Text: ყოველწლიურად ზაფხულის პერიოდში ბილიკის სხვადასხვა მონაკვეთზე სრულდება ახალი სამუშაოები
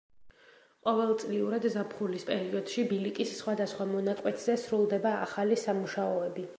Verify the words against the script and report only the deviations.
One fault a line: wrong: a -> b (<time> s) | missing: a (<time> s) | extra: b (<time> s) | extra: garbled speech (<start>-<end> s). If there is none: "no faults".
no faults